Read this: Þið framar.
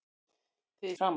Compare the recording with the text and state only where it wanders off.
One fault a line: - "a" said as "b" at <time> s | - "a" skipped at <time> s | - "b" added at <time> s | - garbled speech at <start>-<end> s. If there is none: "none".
none